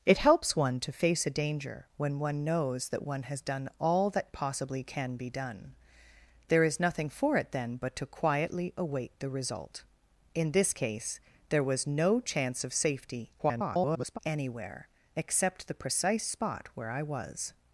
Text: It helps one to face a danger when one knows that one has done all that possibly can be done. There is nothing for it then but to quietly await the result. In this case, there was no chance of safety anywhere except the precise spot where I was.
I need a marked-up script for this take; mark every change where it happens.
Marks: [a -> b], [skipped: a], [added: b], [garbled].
It helps one to face a danger when one knows that one has done all that possibly can be done. There is nothing for it then but to quietly await the result. In this case, there was no chance of safety [garbled] anywhere except the precise spot where I was.